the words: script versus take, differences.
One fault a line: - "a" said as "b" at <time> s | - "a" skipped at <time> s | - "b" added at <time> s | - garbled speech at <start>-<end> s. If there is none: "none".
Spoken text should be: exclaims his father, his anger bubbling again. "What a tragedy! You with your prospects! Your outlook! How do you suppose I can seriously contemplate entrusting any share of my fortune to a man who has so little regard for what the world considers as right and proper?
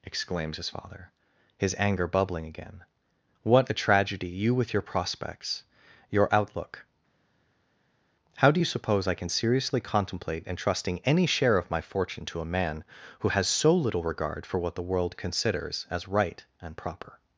none